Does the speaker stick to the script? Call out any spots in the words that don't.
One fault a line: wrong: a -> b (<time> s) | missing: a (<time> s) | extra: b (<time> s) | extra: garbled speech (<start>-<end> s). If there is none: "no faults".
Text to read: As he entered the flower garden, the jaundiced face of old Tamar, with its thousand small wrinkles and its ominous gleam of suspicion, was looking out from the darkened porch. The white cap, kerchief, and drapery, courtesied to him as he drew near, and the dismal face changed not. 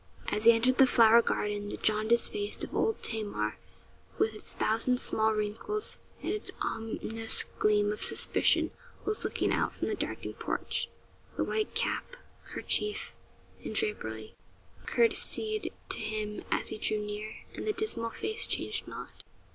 no faults